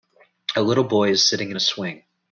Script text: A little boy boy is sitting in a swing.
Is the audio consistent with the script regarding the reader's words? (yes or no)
no